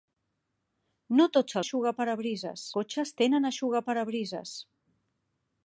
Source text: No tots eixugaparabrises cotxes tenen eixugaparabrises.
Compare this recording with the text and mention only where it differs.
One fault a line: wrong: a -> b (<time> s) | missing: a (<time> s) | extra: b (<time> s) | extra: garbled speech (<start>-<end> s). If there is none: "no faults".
no faults